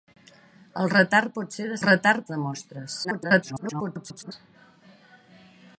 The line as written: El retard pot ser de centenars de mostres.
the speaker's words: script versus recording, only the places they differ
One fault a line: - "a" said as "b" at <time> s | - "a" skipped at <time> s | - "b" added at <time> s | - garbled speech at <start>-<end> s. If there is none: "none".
- "centenars" said as "retard" at 1.9 s
- garbled speech at 3.0-4.3 s